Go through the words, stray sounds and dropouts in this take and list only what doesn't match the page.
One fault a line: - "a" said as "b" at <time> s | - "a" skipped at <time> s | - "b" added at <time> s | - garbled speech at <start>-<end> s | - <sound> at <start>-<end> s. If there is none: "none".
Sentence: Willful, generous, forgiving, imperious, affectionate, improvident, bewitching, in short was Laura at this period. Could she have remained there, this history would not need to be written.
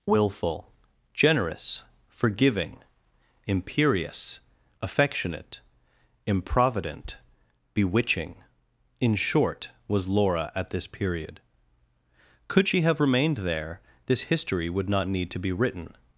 none